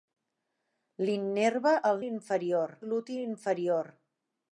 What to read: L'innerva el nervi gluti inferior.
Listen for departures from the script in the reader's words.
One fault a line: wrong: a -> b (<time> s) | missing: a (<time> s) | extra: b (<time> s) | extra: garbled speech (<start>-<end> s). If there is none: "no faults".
wrong: nervi -> inferior (2.1 s)